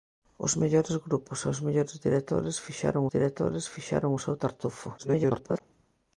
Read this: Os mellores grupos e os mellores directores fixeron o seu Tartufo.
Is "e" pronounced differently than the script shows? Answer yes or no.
no